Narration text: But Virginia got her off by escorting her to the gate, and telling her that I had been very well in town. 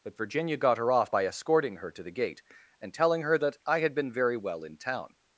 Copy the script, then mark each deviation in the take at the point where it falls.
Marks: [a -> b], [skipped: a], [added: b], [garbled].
But Virginia got her off by escorting her to the gate, and telling her that I had been very well in town.